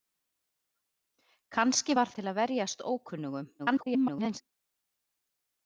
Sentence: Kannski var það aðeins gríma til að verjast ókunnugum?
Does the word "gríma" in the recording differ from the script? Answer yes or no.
yes